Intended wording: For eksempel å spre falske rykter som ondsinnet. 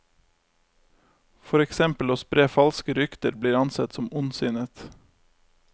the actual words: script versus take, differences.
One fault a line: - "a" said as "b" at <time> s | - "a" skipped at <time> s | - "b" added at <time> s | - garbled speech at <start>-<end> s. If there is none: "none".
- "blir ansett" added at 3.4 s